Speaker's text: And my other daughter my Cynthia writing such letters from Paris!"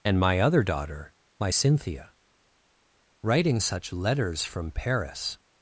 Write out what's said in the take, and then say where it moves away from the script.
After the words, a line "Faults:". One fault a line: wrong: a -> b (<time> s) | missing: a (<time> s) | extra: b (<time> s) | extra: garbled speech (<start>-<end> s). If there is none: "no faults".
And my other daughter my Cynthia writing such letters from Paris!"
Faults:
no faults